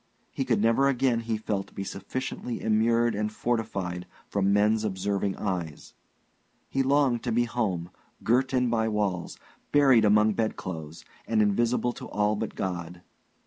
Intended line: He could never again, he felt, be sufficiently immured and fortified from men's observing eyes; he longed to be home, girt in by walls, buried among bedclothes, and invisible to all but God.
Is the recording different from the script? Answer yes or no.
no